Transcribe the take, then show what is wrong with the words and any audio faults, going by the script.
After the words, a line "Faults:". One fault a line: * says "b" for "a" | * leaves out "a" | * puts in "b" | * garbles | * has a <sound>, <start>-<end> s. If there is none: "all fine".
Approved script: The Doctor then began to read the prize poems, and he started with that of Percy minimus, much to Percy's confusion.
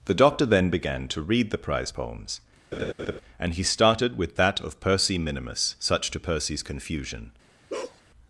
The Doctor then began to read the prize poems, and he started with that of Percy minimus, such to Percy's confusion.
Faults:
* has a laugh, 2.7-3.2 s
* says "such" for "much"
* has a bark, 7.7-8.0 s